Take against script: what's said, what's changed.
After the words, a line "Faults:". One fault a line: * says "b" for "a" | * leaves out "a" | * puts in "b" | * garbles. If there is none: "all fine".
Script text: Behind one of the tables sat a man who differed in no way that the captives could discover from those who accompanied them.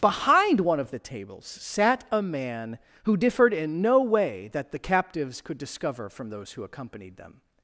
Behind one of the tables sat a man who differed in no way that the captives could discover from those who accompanied them.
Faults:
all fine